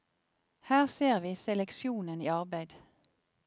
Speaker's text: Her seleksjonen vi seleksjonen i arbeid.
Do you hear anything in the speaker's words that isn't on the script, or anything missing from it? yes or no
yes